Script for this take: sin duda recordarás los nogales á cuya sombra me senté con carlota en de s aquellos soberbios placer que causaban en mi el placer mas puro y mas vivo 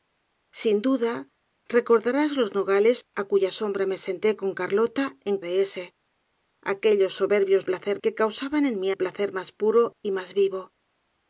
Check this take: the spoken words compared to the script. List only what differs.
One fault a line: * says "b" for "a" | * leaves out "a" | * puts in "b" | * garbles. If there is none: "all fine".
all fine